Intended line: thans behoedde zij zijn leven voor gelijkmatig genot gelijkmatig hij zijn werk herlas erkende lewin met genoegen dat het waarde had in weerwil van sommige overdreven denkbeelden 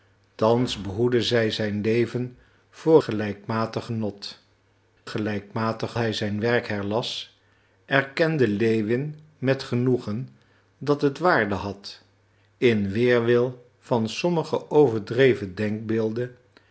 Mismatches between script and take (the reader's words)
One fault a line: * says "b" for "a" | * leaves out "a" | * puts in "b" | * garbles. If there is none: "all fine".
all fine